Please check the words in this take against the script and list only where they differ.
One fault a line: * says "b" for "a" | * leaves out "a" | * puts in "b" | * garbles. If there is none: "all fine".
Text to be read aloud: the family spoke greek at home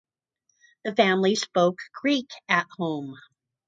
all fine